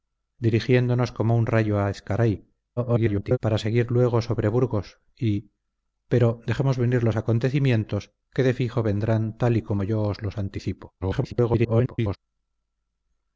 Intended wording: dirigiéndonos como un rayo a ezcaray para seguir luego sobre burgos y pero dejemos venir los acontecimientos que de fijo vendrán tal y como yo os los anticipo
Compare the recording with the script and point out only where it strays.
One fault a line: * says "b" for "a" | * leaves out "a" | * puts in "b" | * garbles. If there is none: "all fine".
* garbles
* garbles